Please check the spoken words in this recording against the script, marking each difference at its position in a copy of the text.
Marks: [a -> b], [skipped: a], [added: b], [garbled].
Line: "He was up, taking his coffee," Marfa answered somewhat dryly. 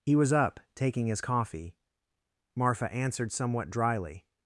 "He was up, taking his coffee," Marfa answered somewhat dryly.